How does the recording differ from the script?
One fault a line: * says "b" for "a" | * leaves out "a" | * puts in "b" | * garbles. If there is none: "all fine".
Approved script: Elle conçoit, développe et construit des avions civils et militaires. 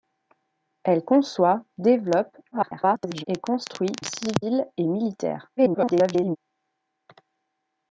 * garbles
* leaves out "des avions"
* garbles